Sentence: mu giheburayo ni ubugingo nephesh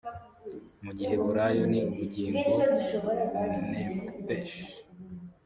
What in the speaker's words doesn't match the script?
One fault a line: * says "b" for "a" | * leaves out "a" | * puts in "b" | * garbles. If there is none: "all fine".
all fine